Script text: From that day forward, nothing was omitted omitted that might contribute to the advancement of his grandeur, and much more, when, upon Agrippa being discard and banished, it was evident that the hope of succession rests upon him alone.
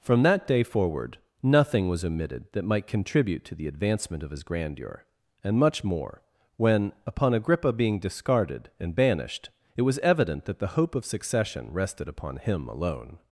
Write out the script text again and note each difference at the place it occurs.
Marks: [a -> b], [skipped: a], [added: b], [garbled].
From that day forward, nothing was omitted [skipped: omitted] that might contribute to the advancement of his grandeur, and much more, when, upon Agrippa being [discard -> discarded] and banished, it was evident that the hope of succession [rests -> rested] upon him alone.